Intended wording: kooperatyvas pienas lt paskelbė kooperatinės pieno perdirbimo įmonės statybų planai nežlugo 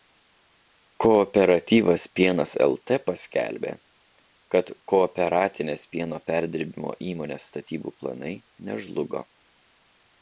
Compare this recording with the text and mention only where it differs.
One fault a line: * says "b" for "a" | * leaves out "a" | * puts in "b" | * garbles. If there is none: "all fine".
* puts in "kad"